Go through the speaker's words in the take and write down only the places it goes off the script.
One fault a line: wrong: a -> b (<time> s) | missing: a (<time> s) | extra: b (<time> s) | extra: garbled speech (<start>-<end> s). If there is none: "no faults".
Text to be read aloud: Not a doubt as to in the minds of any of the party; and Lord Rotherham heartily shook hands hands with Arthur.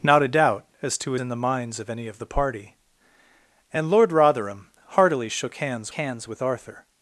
no faults